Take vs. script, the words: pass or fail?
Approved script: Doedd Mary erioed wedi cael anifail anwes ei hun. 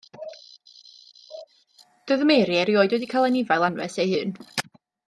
pass